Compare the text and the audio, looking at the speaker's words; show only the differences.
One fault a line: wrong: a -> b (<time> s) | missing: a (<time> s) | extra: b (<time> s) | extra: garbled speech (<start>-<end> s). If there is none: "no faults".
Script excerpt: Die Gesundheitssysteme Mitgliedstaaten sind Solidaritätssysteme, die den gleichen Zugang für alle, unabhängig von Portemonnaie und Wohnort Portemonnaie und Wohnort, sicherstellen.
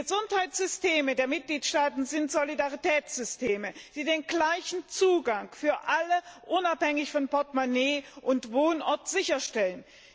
extra: der (1.1 s)
missing: Portemonnaie und Wohnort (9.1 s)